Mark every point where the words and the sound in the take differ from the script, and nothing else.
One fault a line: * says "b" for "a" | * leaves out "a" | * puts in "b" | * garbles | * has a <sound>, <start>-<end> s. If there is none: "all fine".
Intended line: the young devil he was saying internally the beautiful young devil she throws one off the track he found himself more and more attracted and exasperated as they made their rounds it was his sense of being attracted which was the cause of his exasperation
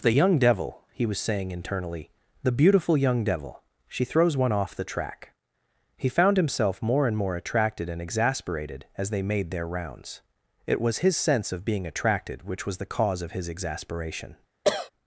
* has a cough, 14.6-14.9 s